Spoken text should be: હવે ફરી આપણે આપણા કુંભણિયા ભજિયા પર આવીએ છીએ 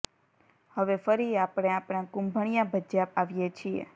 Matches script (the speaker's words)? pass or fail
fail